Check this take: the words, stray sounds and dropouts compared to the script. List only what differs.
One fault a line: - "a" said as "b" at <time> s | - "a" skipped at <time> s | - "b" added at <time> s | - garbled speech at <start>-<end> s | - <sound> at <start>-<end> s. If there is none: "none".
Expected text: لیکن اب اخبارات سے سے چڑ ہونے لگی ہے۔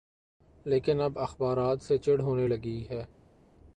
- "سے" skipped at 2.0 s